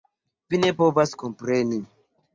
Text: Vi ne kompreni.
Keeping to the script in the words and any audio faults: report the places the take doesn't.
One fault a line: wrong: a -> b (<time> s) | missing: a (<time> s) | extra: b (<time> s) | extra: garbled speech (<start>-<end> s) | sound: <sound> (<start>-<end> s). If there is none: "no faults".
extra: povas (0.8 s)